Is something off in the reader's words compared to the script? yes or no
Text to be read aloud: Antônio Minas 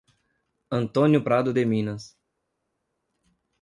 yes